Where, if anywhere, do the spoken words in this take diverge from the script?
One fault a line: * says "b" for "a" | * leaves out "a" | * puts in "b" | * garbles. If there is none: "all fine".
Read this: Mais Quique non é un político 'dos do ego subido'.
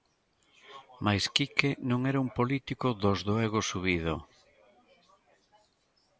* says "era" for "é"